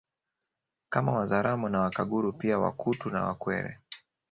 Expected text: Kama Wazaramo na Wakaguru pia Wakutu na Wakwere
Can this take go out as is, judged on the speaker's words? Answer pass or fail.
pass